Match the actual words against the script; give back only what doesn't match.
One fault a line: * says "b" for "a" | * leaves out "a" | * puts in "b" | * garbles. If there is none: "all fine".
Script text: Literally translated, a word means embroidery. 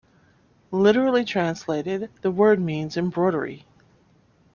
* says "the" for "a"